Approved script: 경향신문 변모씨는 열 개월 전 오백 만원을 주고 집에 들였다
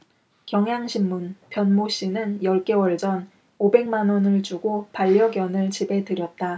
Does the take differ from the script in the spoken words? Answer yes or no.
yes